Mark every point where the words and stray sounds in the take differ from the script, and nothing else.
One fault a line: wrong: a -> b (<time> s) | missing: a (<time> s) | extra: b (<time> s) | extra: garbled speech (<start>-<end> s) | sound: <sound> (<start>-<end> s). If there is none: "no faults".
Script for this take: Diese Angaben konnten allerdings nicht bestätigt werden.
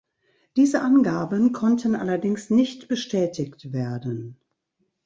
no faults